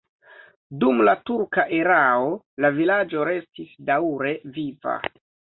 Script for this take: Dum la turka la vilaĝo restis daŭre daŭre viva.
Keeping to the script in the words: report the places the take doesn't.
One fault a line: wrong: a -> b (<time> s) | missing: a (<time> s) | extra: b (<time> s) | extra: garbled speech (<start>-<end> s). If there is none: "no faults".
extra: erao (1.8 s)
missing: daŭre (4.3 s)